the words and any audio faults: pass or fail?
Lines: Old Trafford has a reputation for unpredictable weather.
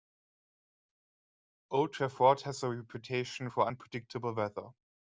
pass